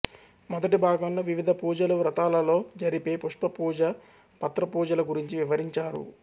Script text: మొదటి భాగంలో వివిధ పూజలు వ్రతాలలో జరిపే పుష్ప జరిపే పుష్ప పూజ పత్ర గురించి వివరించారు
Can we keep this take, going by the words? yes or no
no